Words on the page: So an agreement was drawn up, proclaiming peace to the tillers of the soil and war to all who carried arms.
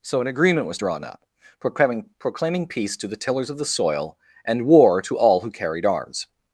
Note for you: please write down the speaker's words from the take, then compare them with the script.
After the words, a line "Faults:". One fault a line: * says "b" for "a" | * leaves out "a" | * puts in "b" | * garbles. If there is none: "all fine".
So an agreement was drawn up, proclaiming proclaiming peace to the tillers of the soil and war to all who carried arms.
Faults:
* puts in "proclaiming"